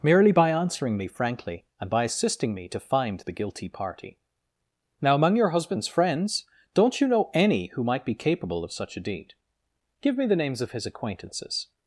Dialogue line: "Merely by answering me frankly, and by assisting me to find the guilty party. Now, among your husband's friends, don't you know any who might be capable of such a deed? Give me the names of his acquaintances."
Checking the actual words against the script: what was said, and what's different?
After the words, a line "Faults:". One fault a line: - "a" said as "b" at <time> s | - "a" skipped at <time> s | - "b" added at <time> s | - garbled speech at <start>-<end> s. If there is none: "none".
"Merely by answering me frankly, and by assisting me to find the guilty party. Now, among your husband's friends, don't you know any who might be capable of such a deed? Give me the names of his acquaintances."
Faults:
none